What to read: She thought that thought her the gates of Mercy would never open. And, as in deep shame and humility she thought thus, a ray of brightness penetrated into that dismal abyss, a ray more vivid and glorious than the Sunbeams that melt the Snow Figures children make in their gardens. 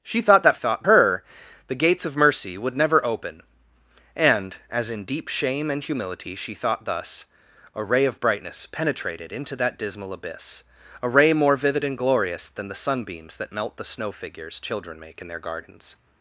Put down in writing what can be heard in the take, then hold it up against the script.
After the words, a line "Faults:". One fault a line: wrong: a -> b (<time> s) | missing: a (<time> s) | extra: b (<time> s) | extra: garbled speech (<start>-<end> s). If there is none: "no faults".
She thought that thought her the gates of Mercy would never open. And, as in deep shame and humility she thought thus, a ray of brightness penetrated into that dismal abyss, a ray more vivid and glorious than the Sunbeams that melt the Snow Figures children make in their gardens.
Faults:
no faults